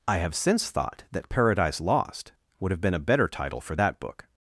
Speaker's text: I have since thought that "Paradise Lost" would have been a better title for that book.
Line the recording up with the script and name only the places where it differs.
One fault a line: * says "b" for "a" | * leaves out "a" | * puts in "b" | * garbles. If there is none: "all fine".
all fine